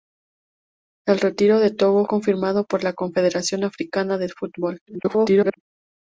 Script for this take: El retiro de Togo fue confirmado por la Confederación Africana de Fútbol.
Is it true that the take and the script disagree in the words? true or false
true